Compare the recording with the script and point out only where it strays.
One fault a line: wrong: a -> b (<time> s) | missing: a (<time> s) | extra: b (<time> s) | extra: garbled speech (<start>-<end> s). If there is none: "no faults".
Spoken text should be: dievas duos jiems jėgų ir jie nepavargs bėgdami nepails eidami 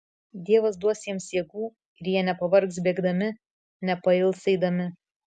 no faults